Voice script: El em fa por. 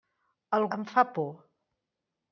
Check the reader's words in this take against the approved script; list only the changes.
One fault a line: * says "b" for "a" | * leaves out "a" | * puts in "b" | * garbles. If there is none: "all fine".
all fine